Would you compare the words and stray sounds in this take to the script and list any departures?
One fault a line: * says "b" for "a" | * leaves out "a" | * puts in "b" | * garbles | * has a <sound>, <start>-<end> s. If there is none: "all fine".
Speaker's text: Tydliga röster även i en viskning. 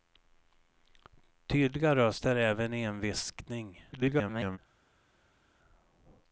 * garbles